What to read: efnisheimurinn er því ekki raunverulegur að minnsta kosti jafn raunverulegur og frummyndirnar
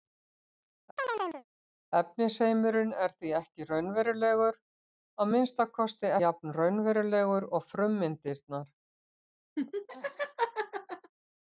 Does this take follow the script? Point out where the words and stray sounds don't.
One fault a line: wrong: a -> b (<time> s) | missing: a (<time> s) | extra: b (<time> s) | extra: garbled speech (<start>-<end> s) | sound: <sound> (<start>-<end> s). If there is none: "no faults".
sound: chirp (1.0-1.4 s)
sound: laugh (9.6-11.1 s)